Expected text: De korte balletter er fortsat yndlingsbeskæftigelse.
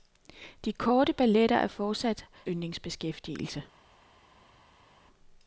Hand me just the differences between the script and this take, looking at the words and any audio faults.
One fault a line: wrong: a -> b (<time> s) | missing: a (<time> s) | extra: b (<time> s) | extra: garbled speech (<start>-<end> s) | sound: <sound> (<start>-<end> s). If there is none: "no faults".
no faults